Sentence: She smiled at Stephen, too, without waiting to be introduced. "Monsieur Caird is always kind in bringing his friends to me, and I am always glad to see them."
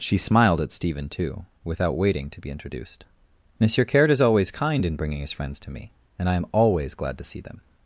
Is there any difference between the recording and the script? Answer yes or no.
no